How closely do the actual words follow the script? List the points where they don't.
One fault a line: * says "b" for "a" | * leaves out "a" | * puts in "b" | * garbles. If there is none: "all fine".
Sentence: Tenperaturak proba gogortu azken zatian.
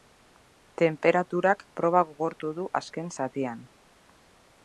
* puts in "du"